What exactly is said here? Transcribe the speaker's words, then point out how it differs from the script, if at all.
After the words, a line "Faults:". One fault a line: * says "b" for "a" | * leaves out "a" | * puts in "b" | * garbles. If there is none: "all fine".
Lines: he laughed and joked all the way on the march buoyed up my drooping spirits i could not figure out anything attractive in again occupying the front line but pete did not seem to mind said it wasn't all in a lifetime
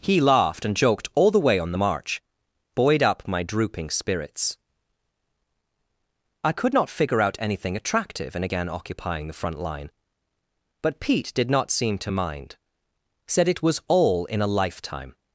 he laughed and joked all the way on the march buoyed up my drooping spirits i could not figure out anything attractive in again occupying the front line but pete did not seem to mind said it was all in a lifetime
Faults:
* says "was" for "wasn't"